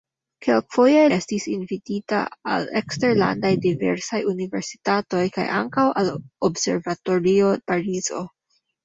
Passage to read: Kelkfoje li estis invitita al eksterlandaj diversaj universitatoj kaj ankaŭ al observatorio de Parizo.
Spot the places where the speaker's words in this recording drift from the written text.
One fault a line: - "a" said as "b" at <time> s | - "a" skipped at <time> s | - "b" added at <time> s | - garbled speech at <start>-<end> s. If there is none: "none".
- "li" skipped at 1.0 s
- "de" skipped at 7.5 s